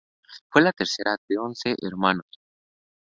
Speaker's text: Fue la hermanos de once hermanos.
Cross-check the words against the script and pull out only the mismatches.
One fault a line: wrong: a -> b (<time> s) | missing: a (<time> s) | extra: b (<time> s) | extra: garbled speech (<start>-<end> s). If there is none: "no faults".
wrong: hermanos -> tercera (0.7 s)